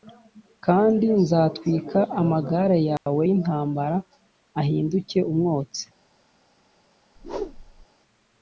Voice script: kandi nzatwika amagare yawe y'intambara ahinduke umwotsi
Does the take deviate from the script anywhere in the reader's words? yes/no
no